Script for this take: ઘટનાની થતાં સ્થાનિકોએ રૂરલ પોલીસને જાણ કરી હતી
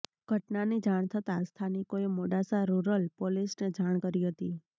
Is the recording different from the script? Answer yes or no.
yes